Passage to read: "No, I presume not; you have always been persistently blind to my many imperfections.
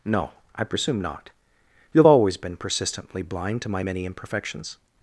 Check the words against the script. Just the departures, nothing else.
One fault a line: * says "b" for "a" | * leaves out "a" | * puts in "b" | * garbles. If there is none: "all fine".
all fine